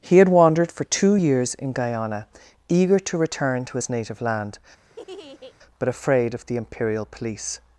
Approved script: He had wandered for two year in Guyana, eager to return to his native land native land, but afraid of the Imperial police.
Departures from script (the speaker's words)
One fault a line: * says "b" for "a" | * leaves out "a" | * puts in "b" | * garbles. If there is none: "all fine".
* says "years" for "year"
* leaves out "native land"